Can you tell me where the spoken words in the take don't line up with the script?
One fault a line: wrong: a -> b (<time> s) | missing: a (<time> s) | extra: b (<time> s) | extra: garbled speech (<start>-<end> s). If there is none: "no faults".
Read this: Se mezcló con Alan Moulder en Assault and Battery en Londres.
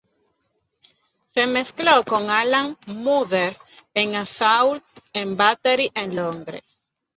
no faults